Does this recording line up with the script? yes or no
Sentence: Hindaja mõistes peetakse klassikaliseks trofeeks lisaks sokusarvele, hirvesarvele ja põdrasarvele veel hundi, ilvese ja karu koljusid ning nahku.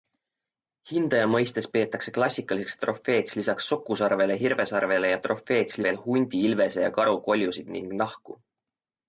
no